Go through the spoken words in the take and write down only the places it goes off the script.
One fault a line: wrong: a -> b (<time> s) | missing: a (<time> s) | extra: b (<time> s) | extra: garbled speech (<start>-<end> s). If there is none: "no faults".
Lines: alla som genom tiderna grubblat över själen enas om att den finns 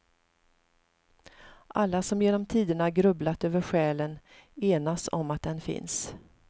no faults